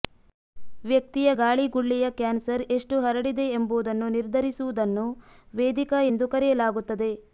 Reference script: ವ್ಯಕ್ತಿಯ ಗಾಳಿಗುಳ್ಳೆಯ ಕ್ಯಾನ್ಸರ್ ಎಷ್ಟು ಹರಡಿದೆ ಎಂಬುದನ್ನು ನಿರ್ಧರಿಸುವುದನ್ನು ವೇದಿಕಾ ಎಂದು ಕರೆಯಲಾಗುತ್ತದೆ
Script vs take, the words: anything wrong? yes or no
no